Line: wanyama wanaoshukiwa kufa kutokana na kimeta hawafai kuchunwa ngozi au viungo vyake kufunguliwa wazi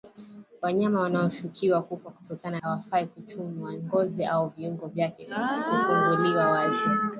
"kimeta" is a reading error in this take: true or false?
true